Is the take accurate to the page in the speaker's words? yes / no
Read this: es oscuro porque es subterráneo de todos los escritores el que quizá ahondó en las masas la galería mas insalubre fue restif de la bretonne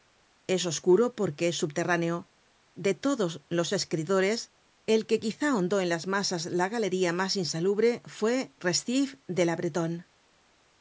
yes